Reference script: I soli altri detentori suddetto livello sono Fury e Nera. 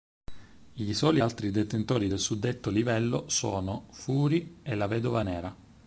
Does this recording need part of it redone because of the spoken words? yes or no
yes